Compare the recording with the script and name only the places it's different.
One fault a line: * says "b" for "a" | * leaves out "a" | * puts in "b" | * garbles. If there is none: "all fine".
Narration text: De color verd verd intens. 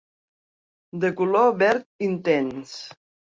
* leaves out "verd"